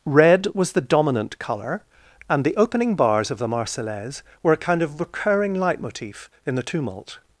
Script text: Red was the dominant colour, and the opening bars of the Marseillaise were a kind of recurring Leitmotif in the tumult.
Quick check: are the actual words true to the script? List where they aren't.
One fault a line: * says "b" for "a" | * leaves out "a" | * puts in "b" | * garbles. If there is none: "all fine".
all fine